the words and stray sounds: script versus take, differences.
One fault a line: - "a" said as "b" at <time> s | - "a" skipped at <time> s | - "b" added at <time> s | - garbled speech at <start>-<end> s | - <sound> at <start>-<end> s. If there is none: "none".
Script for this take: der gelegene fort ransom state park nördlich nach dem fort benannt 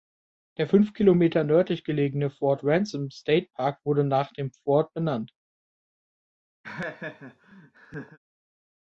- "fünf kilometer nördlich" added at 0.7 s
- "nördlich" said as "wurde" at 3.8 s
- laugh at 6.6-8.2 s